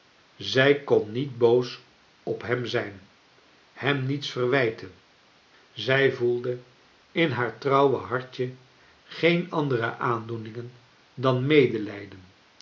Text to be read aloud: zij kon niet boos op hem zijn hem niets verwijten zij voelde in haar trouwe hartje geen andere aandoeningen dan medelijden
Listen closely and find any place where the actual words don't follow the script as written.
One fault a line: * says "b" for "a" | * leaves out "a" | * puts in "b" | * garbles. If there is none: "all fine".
all fine